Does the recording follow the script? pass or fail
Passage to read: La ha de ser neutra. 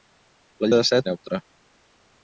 pass